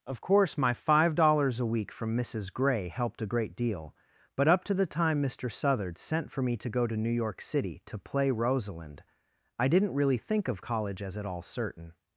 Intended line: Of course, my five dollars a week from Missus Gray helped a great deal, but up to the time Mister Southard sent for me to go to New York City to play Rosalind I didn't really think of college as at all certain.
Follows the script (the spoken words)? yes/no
yes